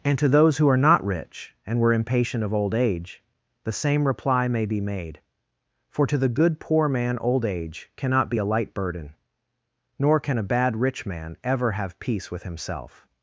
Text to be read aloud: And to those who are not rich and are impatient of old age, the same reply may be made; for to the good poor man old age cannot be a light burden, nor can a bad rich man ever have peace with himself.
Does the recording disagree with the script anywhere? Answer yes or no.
yes